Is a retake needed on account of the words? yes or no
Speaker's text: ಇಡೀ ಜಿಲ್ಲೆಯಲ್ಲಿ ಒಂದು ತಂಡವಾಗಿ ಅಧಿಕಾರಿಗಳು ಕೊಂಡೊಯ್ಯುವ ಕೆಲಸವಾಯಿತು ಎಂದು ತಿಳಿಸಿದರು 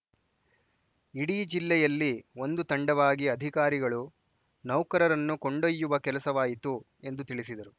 yes